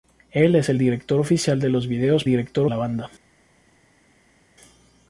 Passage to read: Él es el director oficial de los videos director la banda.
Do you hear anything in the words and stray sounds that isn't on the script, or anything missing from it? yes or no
no